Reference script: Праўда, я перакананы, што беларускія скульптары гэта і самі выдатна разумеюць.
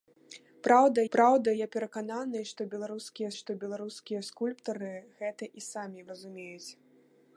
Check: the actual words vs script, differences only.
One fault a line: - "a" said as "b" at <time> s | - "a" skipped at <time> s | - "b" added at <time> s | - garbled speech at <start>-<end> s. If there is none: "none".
- "праўда" added at 1.2 s
- "што беларускія" added at 3.4 s
- "выдатна" skipped at 6.0 s